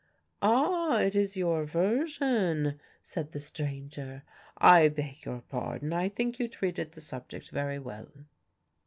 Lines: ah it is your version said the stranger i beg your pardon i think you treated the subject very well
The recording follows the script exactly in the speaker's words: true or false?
true